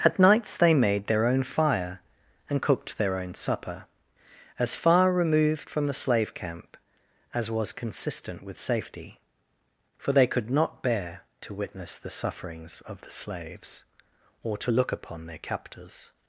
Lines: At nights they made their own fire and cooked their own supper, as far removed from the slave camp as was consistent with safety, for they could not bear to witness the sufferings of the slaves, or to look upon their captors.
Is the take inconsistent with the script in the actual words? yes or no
no